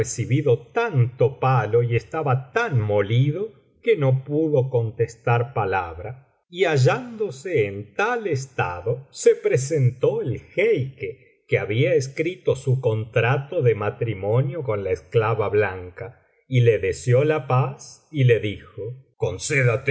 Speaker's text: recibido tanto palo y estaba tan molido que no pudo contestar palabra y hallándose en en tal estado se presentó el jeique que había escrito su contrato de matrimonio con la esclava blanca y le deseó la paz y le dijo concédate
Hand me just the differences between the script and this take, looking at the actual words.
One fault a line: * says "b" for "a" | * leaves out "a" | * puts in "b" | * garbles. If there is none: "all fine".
* leaves out "en"